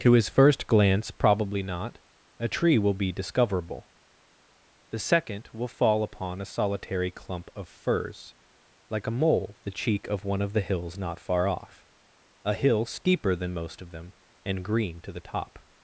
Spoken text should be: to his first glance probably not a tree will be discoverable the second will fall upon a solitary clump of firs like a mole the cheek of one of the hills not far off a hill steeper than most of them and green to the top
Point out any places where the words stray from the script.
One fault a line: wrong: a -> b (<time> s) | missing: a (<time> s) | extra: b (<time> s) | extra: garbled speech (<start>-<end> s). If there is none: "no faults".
no faults